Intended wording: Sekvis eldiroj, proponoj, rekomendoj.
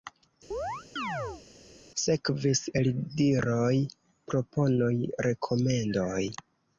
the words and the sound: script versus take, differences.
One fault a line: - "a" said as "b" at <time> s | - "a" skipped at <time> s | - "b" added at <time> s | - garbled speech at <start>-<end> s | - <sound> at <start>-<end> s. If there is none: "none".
- chirp at 0.5-1.4 s